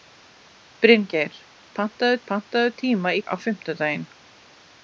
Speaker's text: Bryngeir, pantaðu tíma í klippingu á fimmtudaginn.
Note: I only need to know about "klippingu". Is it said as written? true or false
false